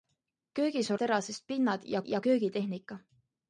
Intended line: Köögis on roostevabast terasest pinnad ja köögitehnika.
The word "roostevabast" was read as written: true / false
false